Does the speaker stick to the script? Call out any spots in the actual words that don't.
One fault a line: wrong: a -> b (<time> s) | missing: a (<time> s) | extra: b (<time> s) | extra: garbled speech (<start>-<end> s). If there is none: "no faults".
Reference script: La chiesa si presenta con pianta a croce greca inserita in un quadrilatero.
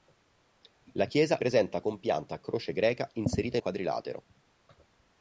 missing: si (1.4 s)
missing: un (3.6 s)